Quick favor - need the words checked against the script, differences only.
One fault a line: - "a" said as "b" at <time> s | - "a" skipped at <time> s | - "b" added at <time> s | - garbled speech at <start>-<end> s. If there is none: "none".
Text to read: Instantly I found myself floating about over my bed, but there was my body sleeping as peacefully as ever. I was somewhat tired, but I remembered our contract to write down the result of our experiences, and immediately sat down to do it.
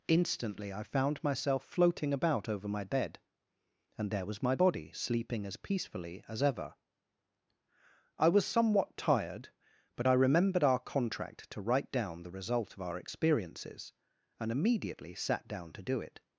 - "but" said as "and" at 4.0 s